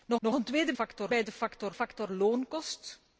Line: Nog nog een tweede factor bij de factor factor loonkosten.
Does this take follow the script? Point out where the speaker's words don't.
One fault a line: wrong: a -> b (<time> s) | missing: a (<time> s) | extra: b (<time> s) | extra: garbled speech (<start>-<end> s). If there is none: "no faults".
no faults